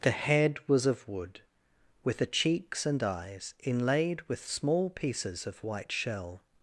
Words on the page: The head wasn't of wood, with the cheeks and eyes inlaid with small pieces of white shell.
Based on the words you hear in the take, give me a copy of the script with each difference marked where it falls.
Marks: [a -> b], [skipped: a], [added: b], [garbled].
The head [wasn't -> was] of wood, with the cheeks and eyes inlaid with small pieces of white shell.